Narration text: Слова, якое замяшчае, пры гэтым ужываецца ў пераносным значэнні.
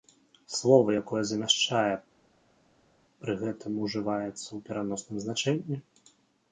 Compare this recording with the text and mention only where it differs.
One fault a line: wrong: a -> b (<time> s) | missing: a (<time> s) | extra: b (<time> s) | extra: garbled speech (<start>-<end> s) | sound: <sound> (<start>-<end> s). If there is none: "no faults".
no faults